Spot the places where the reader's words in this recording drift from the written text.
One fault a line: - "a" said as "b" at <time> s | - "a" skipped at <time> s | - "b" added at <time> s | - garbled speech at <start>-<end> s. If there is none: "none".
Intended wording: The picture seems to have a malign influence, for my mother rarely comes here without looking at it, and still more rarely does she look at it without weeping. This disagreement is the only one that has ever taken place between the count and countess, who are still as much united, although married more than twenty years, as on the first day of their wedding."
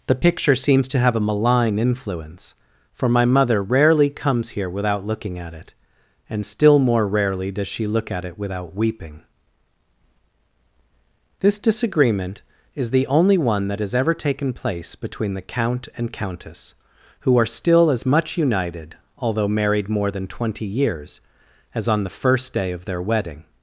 none